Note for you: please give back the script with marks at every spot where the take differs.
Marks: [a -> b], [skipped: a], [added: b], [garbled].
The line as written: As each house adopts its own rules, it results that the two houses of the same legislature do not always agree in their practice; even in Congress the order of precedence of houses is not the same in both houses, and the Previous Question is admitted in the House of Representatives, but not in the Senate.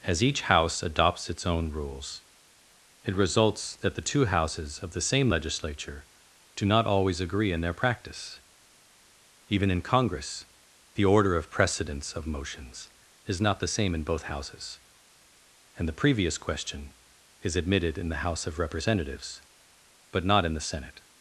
As each house adopts its own rules, it results that the two houses of the same legislature do not always agree in their practice; even in Congress the order of precedence of [houses -> motions] is not the same in both houses, and the Previous Question is admitted in the House of Representatives, but not in the Senate.